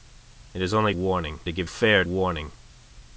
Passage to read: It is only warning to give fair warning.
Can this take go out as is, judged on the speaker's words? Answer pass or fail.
pass